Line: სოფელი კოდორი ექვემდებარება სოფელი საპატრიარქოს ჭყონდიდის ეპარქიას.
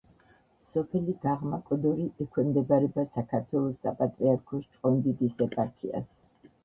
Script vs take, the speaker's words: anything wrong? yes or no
yes